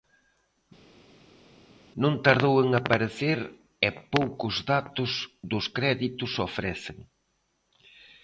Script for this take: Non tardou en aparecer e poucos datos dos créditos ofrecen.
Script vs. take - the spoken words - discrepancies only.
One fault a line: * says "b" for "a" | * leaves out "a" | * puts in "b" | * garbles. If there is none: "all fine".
all fine